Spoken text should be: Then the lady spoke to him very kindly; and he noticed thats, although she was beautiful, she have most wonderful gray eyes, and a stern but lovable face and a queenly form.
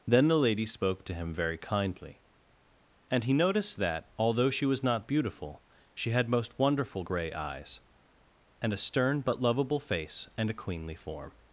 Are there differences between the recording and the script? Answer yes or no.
yes